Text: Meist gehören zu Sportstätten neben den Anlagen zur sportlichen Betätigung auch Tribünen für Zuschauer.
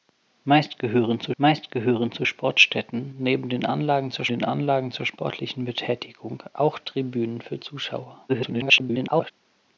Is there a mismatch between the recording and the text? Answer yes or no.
yes